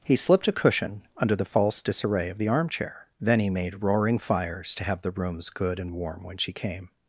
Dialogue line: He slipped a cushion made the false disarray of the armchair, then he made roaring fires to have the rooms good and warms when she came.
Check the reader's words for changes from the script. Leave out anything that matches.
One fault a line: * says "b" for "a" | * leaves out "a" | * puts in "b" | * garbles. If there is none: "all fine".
* says "under" for "made"
* says "warm" for "warms"